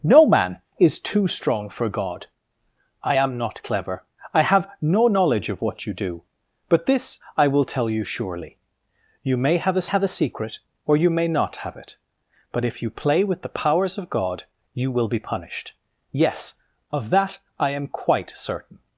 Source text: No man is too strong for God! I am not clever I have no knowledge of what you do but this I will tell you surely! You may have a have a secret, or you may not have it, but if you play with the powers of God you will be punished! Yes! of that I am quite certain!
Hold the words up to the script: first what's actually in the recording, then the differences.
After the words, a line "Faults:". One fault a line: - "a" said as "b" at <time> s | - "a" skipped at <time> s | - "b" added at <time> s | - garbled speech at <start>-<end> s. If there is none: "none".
No man is too strong for God! I am not clever I have no knowledge of what you do but this I will tell you surely! You may have a have a secret, or you may not have it, but if you play with the powers of God you will be punished! Yes! of that I am quite certain!
Faults:
none